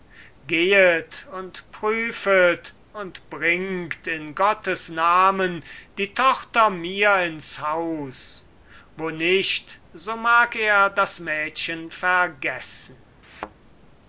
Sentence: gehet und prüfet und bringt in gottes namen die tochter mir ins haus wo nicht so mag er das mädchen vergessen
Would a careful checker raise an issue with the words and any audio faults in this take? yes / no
yes